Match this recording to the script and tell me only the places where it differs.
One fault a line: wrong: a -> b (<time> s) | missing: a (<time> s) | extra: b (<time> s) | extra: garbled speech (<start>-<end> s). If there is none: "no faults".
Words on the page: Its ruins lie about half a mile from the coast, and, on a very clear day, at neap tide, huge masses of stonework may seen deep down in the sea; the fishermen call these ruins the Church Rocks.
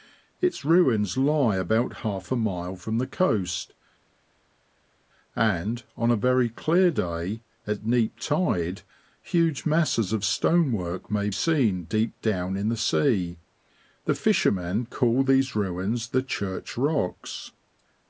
no faults